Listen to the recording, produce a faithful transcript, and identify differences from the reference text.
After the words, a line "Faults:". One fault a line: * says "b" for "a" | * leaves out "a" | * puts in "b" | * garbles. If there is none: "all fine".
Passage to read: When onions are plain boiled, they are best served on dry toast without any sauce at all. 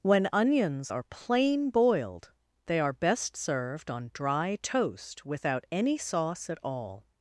When onions are plain boiled, they are best served on dry toast without any sauce at all.
Faults:
all fine